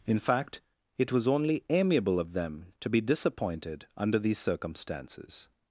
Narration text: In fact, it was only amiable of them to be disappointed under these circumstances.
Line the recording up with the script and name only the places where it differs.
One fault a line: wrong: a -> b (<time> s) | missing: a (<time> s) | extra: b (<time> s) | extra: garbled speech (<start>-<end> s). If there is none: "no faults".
no faults